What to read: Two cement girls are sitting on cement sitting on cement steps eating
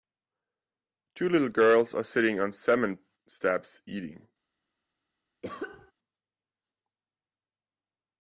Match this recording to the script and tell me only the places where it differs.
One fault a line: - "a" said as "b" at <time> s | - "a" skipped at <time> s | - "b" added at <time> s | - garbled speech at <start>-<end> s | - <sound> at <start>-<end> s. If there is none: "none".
- "cement" said as "little" at 1.3 s
- "sitting on cement" skipped at 3.0 s
- cough at 5.4-5.9 s